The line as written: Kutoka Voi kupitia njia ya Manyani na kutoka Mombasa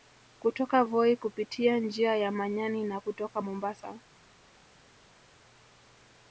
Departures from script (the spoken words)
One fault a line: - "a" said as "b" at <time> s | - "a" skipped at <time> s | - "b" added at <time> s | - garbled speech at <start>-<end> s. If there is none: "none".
none